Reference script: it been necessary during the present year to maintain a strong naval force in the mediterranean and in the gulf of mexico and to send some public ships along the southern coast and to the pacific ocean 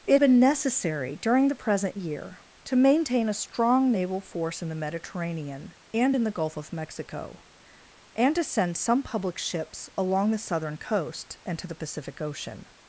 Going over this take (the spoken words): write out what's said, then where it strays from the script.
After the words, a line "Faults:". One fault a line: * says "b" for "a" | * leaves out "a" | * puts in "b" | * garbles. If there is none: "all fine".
it been necessary during the present year to maintain a strong naval force in the mediterranean and in the gulf of mexico and to send some public ships along the southern coast and to the pacific ocean
Faults:
all fine